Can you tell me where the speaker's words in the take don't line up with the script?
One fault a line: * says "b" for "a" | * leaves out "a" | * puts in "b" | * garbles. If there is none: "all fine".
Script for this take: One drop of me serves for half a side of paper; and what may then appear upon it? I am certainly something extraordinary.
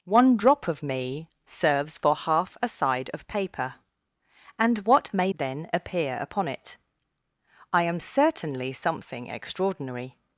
all fine